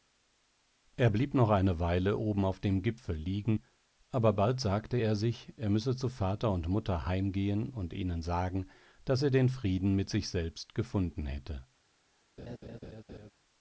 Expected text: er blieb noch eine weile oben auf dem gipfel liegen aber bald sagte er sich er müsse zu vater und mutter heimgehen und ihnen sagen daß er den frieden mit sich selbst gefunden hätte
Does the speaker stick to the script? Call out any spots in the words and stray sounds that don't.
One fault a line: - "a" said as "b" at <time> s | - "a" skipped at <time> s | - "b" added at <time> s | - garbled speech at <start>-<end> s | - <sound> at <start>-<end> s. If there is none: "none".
- laugh at 12.4-13.3 s